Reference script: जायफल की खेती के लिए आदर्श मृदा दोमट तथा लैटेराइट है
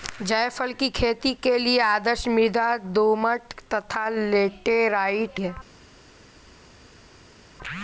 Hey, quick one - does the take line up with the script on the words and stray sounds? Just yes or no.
yes